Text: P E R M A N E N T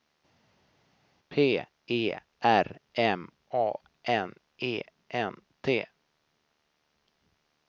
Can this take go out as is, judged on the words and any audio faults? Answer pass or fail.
pass